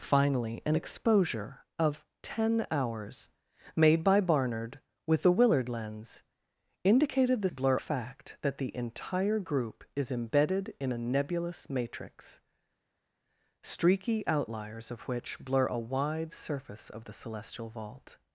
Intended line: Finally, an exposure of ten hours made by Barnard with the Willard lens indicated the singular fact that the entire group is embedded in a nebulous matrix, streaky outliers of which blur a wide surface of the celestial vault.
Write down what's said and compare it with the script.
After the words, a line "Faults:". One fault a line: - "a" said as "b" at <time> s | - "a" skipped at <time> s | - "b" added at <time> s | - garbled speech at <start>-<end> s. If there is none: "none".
Finally, an exposure of ten hours made by Barnard with the Willard lens indicated the blur fact that the entire group is embedded in a nebulous matrix, streaky outliers of which blur a wide surface of the celestial vault.
Faults:
- "singular" said as "blur" at 7.5 s